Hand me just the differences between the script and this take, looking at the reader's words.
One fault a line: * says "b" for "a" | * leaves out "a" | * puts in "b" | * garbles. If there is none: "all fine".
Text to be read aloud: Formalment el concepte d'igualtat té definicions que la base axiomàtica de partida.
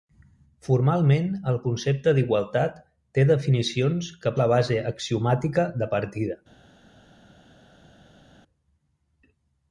all fine